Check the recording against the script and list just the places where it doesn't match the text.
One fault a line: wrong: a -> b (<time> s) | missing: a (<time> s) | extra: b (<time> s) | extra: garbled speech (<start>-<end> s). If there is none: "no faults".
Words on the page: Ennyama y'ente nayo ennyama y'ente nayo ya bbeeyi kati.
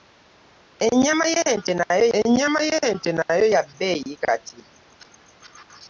no faults